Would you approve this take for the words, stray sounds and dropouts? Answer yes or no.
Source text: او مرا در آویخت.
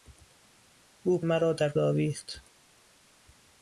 yes